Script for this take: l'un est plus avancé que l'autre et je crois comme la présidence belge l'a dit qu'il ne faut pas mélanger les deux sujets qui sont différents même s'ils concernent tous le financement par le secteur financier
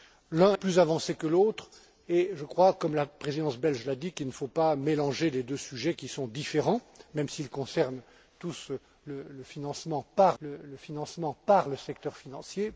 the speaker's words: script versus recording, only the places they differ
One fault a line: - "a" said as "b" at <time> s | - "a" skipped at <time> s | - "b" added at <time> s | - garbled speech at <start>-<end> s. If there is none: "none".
- "est" skipped at 0.6 s
- "financement par le" added at 10.8 s